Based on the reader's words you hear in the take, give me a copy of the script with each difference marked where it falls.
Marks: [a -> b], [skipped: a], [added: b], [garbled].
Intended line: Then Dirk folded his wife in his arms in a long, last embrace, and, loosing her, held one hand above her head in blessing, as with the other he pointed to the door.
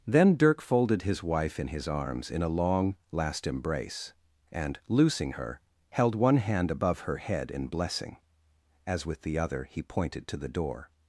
Then Dirk folded his wife in his arms in a long, last embrace, and, loosing her, held one hand above her head in blessing, as with the other he pointed to the door.